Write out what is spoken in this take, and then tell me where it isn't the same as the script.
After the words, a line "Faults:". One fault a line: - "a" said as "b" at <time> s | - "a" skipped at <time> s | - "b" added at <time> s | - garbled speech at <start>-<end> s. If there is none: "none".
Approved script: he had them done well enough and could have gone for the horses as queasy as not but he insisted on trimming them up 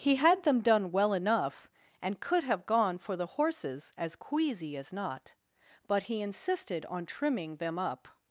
he had them done well enough and could have gone for the horses as queasy as not but he insisted on trimming them up
Faults:
none